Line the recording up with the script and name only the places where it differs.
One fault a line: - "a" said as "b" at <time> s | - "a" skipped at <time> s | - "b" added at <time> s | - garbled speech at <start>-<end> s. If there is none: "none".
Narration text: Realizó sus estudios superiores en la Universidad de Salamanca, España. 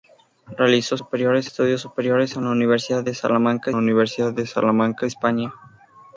- "sus" said as "superiores" at 1.0 s
- "Universidad de Salamanca" added at 3.7 s